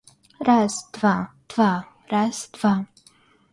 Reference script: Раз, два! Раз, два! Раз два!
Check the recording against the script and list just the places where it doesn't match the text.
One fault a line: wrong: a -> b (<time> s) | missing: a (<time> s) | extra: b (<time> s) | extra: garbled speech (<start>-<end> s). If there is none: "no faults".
missing: Раз (1.3 s)